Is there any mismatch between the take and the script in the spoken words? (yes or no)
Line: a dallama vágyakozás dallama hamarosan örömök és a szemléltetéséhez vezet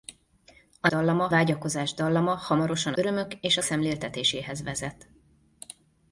no